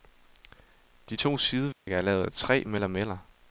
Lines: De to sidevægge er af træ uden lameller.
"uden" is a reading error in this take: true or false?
true